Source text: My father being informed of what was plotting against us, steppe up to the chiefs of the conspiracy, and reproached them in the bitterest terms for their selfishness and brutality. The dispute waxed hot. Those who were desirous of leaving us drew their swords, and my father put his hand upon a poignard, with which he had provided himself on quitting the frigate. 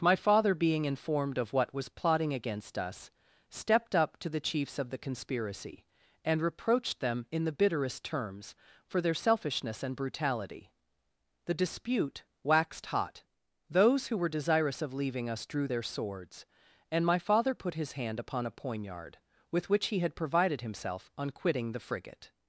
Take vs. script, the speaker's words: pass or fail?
fail